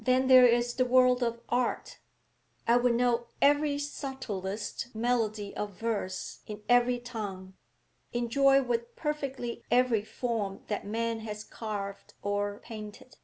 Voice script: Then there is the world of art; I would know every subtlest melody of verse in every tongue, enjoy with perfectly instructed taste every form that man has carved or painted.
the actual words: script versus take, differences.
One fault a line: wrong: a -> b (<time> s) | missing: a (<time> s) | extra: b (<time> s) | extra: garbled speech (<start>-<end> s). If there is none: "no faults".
missing: instructed taste (9.6 s)